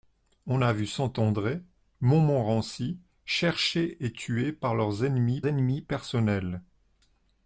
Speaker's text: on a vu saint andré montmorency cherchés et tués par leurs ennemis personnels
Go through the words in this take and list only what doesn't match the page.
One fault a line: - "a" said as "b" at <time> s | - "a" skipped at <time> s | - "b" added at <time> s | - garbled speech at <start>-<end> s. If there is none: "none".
- "ennemis" added at 5.5 s